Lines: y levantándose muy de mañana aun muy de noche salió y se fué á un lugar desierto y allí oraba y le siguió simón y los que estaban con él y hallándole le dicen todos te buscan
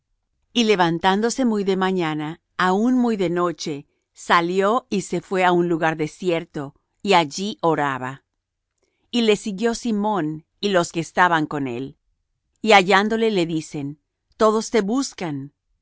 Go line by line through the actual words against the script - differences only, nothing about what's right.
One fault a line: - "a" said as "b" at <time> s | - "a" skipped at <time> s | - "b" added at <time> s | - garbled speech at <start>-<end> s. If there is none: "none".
none